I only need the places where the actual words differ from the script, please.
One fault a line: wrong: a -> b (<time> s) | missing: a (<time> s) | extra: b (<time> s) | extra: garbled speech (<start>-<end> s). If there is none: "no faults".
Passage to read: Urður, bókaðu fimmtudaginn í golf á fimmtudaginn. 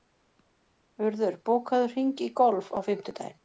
wrong: fimmtudaginn -> hring (1.9 s)